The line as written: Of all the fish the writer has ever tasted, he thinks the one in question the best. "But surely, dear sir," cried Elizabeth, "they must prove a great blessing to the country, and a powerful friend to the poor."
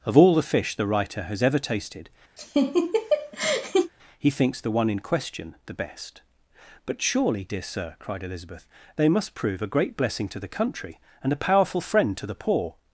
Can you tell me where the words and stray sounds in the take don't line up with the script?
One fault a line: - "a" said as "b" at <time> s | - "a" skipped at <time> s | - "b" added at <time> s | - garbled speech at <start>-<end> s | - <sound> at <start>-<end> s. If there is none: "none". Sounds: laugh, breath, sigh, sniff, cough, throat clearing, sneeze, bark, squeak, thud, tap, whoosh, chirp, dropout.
- laugh at 2.4-3.9 s